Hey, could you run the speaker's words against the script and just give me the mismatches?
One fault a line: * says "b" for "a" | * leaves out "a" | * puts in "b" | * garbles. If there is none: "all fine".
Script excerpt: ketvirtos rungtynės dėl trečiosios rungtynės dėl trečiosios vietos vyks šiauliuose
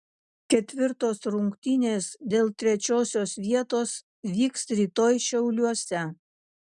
* leaves out "rungtynės dėl trečiosios"
* puts in "rytoj"